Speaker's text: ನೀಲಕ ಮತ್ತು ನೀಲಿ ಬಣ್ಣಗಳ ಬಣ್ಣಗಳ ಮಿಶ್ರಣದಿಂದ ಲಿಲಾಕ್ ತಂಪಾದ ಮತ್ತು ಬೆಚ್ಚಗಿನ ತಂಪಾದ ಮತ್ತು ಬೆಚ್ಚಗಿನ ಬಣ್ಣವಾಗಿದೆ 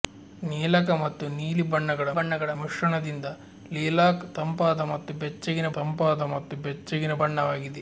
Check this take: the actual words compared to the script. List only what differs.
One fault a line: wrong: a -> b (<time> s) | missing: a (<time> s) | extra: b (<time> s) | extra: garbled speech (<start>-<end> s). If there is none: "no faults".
no faults